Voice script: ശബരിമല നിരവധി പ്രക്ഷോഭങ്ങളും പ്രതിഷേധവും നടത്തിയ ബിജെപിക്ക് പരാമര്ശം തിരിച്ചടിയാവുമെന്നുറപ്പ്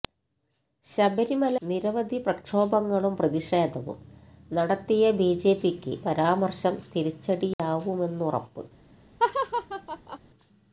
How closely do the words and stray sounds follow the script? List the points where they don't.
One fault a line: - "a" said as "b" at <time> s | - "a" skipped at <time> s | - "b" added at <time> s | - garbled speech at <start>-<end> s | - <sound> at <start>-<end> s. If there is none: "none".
- dropout at 7.5-7.6 s
- laugh at 9.2-10.2 s